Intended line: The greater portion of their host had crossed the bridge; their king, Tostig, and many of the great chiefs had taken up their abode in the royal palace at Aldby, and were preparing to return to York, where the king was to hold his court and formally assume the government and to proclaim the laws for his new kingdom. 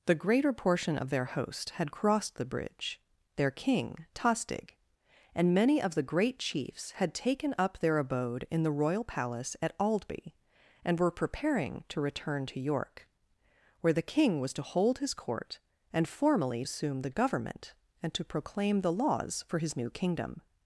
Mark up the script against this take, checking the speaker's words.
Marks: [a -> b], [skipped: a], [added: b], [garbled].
The greater portion of their host had crossed the bridge; their king, Tostig, and many of the great chiefs had taken up their abode in the royal palace at Aldby, and were preparing to return to York, where the king was to hold his court and formally assume the government and to proclaim the laws for his new kingdom.